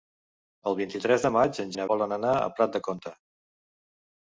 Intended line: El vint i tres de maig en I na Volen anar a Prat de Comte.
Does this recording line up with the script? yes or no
yes